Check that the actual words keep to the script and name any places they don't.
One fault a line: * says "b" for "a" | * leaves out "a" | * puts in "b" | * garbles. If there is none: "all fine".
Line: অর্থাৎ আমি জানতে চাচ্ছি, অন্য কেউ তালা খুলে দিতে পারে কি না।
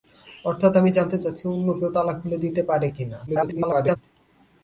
* garbles